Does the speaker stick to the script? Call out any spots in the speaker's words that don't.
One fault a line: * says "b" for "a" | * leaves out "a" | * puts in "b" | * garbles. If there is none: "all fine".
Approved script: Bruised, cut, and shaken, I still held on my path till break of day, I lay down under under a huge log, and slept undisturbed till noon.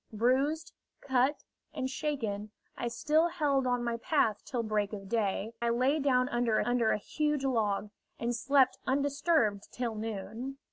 all fine